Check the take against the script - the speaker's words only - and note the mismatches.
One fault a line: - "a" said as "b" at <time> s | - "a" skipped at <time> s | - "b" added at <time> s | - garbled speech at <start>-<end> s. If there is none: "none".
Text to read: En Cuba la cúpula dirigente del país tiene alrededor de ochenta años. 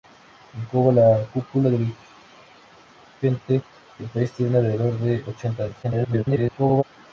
- garbled speech at 5.8-6.8 s